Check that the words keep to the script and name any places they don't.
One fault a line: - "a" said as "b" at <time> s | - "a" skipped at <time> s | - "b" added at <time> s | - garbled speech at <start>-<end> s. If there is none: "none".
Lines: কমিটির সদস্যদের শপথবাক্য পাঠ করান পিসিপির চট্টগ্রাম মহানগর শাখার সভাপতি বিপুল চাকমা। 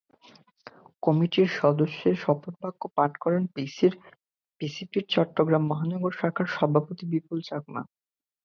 none